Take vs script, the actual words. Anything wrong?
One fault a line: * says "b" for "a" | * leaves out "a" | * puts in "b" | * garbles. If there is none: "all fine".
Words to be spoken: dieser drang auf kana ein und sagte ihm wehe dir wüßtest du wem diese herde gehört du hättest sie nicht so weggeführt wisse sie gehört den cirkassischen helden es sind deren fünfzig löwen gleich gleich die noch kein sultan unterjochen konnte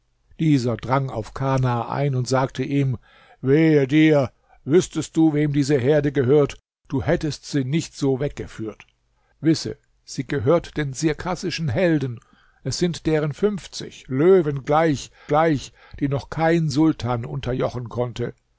all fine